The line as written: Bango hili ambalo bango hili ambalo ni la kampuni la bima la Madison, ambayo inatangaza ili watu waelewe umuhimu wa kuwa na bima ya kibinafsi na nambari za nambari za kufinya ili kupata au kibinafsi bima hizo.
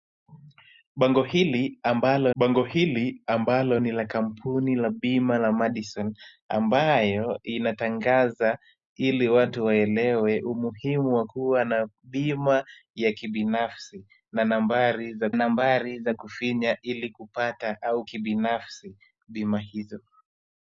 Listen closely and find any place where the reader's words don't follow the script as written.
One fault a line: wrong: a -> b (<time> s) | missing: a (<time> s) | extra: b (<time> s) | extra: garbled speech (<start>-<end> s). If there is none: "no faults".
no faults